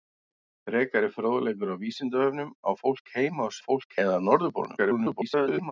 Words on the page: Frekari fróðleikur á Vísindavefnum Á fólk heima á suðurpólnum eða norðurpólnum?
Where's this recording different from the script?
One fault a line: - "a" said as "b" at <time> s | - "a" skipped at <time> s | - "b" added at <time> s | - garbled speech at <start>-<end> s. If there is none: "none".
- "suðurpólnum" said as "fólk" at 3.7 s
- garbled speech at 4.8-5.7 s